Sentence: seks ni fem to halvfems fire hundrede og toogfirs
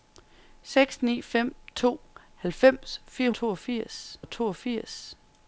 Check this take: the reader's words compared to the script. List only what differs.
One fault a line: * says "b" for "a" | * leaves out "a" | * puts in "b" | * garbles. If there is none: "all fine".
* says "toogfirs" for "hundrede"